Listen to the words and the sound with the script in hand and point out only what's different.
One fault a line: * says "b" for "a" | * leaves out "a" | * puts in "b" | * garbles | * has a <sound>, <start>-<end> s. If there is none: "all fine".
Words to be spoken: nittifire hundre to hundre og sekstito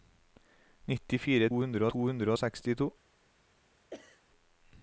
* has a sneeze, 3.9-4.2 s